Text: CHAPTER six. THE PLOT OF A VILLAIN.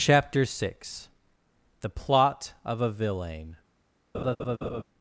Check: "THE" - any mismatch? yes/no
no